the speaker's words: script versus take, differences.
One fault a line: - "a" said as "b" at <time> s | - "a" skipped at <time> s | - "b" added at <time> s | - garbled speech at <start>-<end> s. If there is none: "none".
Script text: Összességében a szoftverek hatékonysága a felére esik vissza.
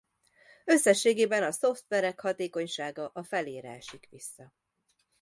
none